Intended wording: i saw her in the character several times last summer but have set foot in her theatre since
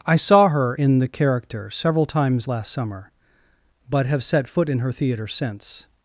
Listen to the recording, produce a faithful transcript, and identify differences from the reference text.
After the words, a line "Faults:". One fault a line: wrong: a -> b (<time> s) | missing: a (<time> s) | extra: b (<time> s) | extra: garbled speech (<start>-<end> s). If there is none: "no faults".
i saw her in the character several times last summer but have set foot in her theatre since
Faults:
no faults